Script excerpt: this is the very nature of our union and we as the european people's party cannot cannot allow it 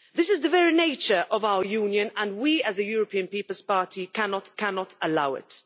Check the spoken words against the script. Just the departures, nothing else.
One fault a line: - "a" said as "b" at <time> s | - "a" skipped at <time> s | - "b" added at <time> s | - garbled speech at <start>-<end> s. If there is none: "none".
none